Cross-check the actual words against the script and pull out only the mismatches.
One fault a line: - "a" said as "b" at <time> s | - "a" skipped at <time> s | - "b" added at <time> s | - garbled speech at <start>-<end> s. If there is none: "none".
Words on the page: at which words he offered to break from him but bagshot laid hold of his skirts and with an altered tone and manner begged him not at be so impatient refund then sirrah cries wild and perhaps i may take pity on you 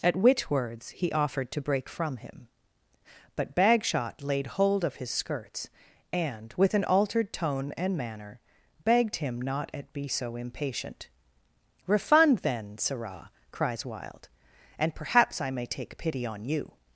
none